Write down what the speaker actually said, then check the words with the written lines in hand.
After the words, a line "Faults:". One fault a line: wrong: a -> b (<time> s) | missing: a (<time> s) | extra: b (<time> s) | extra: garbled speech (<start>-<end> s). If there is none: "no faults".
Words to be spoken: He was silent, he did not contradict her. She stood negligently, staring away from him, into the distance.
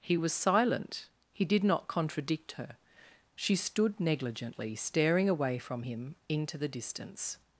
He was silent, he did not contradict her. She stood negligently, staring away from him, into the distance.
Faults:
no faults